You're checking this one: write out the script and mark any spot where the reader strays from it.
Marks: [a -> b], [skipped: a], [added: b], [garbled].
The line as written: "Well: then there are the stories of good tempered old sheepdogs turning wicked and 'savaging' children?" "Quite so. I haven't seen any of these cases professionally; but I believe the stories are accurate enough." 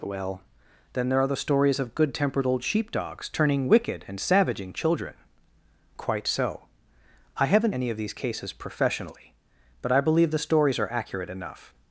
"Well: then there are the stories of good tempered old sheepdogs turning wicked and 'savaging' children?" "Quite so. I haven't [skipped: seen] any of these cases professionally; but I believe the stories are accurate enough."